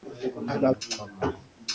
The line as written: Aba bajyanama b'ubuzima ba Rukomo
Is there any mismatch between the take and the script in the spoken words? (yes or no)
yes